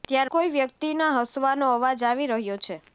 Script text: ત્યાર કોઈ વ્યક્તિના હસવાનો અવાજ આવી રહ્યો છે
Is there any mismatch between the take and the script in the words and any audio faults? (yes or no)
no